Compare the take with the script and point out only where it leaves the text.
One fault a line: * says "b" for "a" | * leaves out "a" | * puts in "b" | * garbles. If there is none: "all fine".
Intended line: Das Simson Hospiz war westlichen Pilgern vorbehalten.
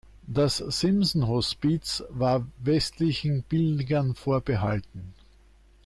all fine